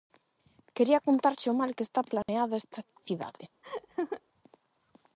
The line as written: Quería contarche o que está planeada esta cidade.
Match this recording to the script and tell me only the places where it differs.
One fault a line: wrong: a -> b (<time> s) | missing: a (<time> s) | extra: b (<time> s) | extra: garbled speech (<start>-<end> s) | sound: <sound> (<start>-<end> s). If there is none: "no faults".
extra: mal (1.6 s)
sound: dropout (2.2-2.3 s)
sound: laugh (3.6-4.2 s)